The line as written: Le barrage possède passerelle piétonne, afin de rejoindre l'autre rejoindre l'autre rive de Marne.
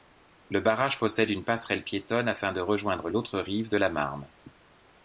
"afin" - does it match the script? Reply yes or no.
yes